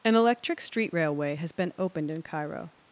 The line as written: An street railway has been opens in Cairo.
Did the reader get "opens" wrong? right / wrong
wrong